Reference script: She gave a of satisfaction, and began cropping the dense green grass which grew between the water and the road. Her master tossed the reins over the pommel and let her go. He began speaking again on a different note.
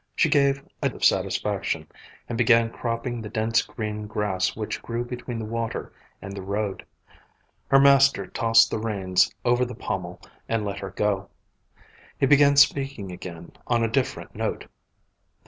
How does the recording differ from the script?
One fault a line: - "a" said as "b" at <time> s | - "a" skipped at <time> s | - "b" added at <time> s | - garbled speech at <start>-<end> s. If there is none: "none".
none